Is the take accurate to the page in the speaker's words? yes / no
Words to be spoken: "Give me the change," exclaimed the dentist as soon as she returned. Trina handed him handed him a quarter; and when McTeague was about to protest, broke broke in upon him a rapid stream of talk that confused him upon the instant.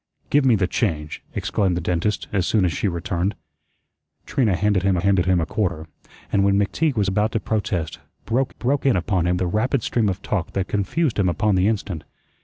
yes